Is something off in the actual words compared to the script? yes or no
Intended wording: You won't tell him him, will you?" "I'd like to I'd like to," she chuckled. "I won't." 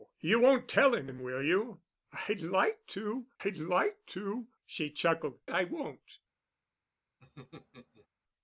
no